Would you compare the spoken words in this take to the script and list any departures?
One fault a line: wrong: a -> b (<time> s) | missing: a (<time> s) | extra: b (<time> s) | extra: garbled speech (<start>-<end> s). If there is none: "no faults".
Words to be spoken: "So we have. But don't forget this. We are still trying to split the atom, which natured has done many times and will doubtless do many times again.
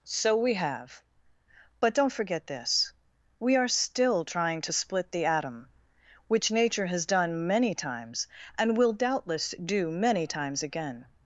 wrong: natured -> nature (6.5 s)